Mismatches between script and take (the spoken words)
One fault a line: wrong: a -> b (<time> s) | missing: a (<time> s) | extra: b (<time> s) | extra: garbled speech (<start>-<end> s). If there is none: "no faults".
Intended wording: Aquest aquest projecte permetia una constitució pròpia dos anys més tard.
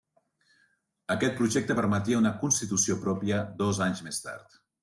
missing: aquest (1.4 s)